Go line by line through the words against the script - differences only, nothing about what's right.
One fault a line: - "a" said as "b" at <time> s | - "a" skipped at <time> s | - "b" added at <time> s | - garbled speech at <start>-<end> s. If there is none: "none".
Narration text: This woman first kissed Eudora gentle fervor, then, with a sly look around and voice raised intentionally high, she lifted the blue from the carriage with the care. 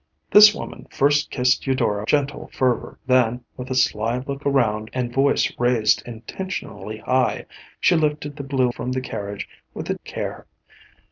none